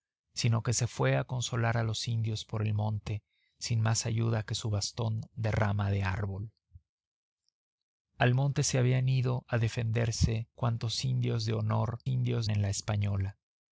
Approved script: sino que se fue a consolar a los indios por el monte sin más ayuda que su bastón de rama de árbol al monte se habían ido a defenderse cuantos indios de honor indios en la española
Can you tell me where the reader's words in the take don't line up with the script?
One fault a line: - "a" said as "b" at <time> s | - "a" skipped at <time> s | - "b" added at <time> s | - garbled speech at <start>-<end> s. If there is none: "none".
none